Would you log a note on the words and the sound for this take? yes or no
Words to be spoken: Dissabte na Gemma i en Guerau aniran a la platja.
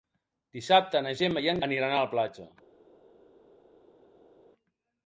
yes